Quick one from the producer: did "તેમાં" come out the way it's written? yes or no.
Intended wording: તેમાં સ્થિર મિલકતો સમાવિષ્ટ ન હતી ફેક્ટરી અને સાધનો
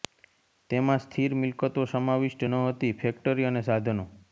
yes